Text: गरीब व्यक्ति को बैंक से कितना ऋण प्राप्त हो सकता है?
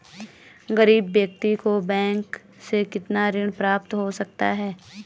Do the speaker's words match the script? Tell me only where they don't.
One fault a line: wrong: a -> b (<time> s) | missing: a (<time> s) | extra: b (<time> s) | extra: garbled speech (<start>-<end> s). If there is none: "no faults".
no faults